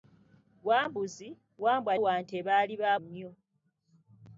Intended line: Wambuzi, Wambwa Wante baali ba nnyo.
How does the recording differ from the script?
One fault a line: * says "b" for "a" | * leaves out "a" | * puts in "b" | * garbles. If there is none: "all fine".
all fine